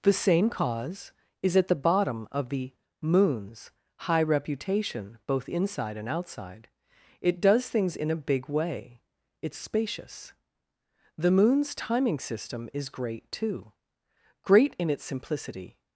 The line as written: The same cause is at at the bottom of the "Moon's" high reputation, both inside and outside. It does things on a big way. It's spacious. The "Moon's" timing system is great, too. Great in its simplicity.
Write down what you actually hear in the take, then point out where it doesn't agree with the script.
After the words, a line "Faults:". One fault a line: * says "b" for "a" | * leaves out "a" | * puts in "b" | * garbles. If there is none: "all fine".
The same cause is at the bottom of the "Moon's" high reputation, both inside and outside. It does things in a big way. It's spacious. The "Moon's" timing system is great, too. Great in its simplicity.
Faults:
* leaves out "at"
* says "in" for "on"